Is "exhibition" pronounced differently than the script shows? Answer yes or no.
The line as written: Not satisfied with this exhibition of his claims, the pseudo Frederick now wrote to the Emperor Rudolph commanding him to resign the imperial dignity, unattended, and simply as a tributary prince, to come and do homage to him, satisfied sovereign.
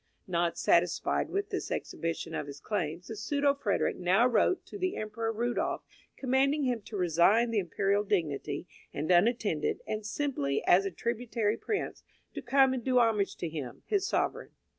no